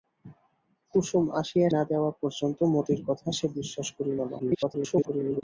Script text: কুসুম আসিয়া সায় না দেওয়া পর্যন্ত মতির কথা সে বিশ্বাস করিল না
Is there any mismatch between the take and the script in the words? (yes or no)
yes